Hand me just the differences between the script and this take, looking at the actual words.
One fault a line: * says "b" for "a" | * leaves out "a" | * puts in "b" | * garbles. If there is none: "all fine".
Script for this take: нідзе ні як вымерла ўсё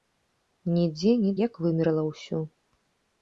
all fine